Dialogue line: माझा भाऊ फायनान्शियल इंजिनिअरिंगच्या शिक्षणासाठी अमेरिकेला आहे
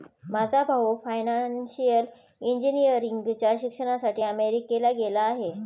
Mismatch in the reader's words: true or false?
true